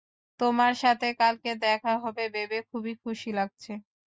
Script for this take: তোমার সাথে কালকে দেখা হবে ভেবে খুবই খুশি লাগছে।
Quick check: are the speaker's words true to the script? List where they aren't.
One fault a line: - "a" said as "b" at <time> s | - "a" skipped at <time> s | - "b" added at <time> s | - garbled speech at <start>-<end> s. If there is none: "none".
none